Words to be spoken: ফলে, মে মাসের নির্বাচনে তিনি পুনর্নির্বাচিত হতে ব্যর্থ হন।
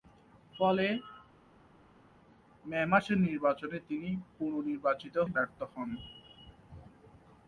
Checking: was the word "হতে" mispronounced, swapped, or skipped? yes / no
yes